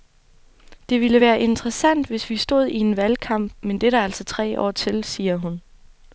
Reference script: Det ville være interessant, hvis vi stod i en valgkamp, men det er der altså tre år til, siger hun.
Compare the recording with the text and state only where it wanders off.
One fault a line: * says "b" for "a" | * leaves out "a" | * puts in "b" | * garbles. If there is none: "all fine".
all fine